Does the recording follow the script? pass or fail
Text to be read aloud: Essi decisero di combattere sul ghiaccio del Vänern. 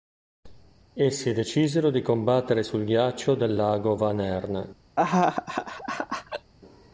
fail